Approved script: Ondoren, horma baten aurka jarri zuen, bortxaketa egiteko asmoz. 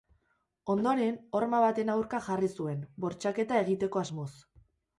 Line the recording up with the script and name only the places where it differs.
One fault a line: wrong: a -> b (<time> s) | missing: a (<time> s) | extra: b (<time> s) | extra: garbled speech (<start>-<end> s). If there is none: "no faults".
no faults